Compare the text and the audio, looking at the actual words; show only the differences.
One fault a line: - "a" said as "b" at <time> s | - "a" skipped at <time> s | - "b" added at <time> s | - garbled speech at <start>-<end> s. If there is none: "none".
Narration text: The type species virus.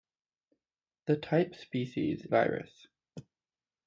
none